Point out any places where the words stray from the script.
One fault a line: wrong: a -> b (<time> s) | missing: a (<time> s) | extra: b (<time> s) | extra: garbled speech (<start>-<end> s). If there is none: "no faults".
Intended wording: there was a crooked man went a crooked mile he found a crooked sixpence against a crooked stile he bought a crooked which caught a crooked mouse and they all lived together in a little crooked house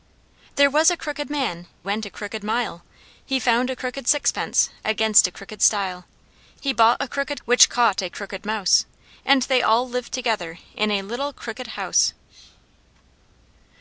no faults